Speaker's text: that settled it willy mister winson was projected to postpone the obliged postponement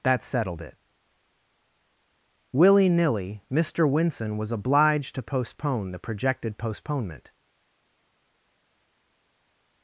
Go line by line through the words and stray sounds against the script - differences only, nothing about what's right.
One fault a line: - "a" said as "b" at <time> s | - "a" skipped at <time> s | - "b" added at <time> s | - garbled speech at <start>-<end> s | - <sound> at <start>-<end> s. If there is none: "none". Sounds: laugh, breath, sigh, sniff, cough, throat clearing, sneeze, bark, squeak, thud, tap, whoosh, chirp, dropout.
- "nilly" added at 2.9 s
- "projected" said as "obliged" at 4.5 s
- "obliged" said as "projected" at 6.0 s